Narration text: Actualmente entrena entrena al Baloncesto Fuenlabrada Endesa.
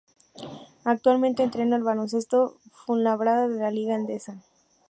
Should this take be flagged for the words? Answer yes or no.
yes